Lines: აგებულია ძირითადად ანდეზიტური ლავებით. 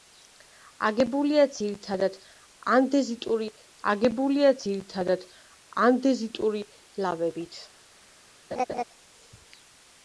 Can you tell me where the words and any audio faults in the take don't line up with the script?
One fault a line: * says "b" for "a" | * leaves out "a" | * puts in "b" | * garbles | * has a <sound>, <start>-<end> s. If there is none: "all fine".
* puts in "აგებულია ძირითადად ანდეზიტური"
* has a laugh, 8.5-8.8 s